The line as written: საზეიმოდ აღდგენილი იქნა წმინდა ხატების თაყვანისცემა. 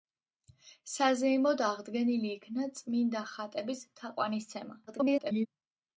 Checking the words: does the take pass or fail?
fail